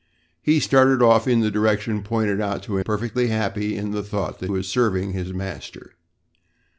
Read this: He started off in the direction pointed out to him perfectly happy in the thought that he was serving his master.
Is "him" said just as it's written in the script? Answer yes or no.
no